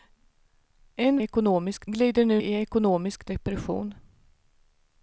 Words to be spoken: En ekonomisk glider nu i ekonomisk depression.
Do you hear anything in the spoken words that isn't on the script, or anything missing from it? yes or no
no